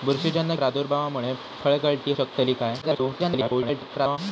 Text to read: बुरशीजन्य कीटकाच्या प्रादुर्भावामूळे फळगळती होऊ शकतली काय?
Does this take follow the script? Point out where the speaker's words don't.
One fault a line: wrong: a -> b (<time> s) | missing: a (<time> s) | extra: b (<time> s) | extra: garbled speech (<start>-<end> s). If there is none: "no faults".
missing: कीटकाच्या (0.6 s)
missing: होऊ (2.1 s)
extra: garbled speech (2.8-4.2 s)